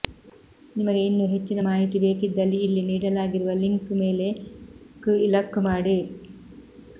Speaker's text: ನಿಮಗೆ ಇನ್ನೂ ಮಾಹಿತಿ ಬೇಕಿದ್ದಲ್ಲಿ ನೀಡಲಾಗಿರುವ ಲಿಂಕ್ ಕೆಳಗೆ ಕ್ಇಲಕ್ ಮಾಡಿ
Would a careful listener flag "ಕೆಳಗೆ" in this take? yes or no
yes